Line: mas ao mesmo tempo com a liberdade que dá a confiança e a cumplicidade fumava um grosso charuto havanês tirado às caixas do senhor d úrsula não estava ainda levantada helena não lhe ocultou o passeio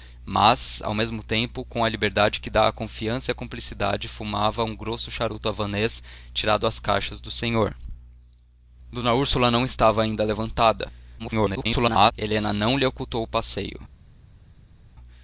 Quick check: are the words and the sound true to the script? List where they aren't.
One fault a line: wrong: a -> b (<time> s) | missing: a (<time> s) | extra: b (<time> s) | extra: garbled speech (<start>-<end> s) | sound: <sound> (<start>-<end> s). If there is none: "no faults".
extra: garbled speech (11.2-12.1 s)